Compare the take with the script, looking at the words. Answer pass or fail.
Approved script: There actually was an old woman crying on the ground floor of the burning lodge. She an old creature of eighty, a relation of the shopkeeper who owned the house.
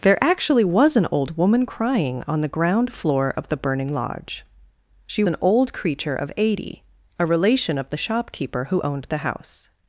pass